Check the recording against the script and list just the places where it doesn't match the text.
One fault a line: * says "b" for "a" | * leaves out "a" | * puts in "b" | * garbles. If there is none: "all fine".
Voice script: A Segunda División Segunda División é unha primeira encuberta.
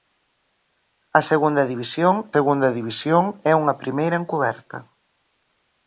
all fine